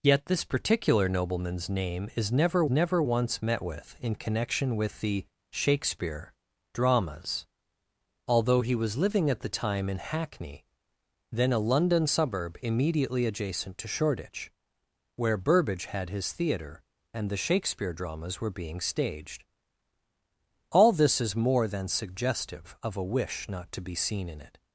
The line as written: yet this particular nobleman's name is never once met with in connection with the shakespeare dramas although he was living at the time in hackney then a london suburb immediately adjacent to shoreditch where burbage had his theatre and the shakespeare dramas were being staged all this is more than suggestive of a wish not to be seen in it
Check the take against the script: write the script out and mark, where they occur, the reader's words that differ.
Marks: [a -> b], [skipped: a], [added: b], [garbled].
yet this particular nobleman's name is never [added: never] once met with in connection with the shakespeare dramas although he was living at the time in hackney then a london suburb immediately adjacent to shoreditch where burbage had his theatre and the shakespeare dramas were being staged all this is more than suggestive of a wish not to be seen in it